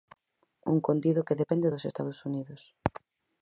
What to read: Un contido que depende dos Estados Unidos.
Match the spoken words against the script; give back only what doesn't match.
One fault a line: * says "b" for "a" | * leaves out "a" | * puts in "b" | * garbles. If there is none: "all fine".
all fine